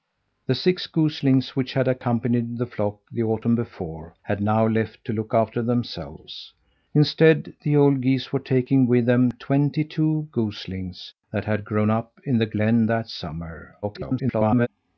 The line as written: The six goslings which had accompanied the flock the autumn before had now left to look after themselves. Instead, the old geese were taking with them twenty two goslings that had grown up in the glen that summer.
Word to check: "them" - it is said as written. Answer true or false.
true